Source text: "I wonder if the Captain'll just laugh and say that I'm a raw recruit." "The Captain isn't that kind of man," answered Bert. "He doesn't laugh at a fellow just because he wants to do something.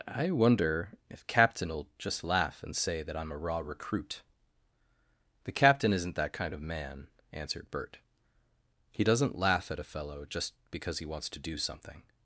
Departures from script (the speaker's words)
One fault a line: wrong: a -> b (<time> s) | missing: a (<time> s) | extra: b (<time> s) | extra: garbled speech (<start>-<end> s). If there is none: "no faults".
missing: the (1.3 s)